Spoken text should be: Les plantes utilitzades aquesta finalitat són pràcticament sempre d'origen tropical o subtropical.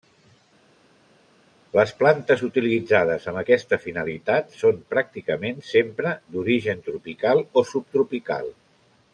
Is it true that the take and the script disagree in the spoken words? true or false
true